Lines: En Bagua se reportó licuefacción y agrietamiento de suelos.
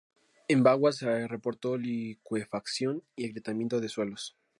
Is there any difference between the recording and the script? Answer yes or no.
no